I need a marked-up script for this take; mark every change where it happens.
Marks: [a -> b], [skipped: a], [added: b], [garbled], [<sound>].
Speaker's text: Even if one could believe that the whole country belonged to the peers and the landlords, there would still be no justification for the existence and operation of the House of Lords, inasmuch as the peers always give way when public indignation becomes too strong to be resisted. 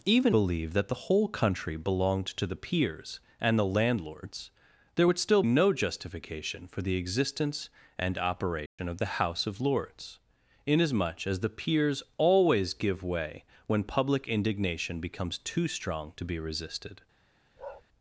Even [skipped: if one could] believe that the whole country belonged to the peers and the landlords, there would still [skipped: be] no justification for the existence and operation [dropout] of the House of Lords, inasmuch as the peers always give way when public indignation becomes too strong to be resisted. [bark]